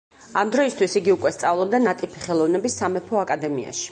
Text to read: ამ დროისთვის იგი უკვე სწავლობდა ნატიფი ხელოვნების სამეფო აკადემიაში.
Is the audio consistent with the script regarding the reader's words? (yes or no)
yes